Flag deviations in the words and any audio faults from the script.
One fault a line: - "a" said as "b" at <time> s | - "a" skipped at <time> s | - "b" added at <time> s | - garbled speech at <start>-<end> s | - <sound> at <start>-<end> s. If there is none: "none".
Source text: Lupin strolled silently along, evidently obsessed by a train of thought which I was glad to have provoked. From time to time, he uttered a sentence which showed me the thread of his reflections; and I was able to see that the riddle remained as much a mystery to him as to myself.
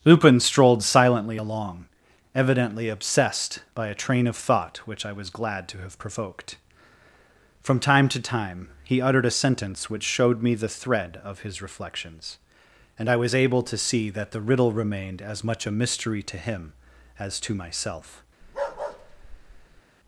- bark at 18.4-19.8 s